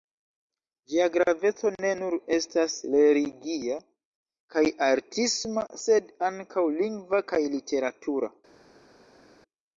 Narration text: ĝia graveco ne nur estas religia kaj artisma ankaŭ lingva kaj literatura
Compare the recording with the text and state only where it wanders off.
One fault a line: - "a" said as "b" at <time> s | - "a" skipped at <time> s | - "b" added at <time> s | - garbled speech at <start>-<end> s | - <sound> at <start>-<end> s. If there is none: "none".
- "sed" added at 5.9 s